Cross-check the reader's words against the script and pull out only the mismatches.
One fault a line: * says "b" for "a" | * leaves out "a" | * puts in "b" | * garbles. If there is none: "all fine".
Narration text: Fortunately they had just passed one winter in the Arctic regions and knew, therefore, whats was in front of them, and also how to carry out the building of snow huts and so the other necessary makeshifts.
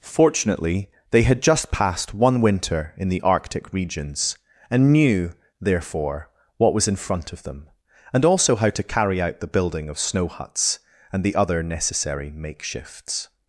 * says "what" for "whats"
* leaves out "so"